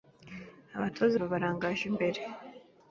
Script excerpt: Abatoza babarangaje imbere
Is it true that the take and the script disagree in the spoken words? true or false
false